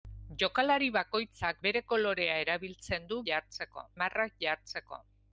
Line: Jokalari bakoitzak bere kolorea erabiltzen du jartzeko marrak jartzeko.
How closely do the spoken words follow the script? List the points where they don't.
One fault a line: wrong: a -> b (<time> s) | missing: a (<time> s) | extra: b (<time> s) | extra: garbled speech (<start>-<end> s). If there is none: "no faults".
no faults